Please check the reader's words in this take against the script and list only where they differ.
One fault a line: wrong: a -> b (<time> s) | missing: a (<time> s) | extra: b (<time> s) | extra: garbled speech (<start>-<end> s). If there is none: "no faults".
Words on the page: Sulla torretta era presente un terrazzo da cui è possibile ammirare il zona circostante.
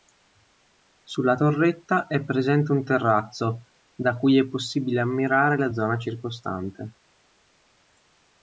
wrong: era -> è (2.1 s)
wrong: il -> la (5.6 s)